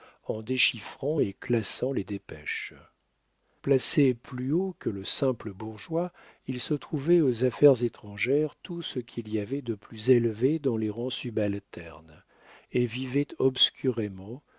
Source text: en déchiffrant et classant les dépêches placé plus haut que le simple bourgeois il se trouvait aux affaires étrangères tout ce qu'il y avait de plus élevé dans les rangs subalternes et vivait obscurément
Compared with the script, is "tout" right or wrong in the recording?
right